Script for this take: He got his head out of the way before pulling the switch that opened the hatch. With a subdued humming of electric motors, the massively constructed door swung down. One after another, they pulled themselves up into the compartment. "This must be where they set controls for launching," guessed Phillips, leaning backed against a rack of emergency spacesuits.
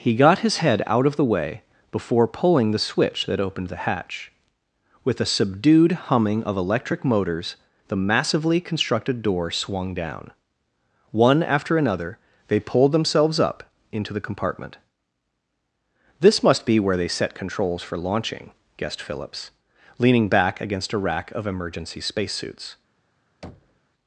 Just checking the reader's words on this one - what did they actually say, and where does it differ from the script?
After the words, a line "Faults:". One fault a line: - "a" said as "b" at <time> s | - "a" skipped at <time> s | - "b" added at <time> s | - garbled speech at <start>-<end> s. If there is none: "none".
He got his head out of the way before pulling the switch that opened the hatch. With a subdued humming of electric motors, the massively constructed door swung down. One after another, they pulled themselves up into the compartment. "This must be where they set controls for launching," guessed Phillips, leaning back against a rack of emergency spacesuits.
Faults:
- "backed" said as "back" at 20.3 s